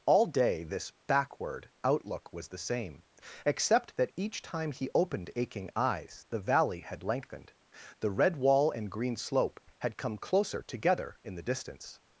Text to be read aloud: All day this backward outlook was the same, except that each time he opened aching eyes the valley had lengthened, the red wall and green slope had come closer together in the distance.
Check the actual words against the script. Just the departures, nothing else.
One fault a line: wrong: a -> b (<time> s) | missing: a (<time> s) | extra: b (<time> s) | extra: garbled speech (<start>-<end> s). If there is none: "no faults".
no faults